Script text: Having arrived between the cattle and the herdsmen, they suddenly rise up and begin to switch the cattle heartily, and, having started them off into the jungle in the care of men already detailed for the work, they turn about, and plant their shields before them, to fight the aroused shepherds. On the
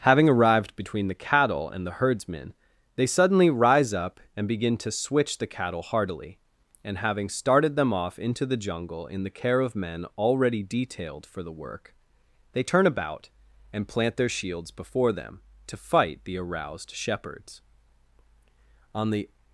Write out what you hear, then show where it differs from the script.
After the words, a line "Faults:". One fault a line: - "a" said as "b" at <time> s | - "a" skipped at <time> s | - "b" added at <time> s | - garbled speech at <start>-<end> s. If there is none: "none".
Having arrived between the cattle and the herdsmen, they suddenly rise up and begin to switch the cattle heartily, and, having started them off into the jungle in the care of men already detailed for the work, they turn about, and plant their shields before them, to fight the aroused shepherds. On the
Faults:
none